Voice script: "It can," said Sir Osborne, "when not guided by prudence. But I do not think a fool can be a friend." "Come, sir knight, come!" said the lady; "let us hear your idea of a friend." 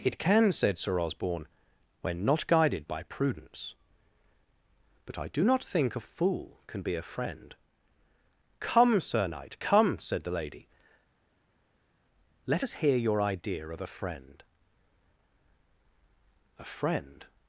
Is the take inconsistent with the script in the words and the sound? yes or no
yes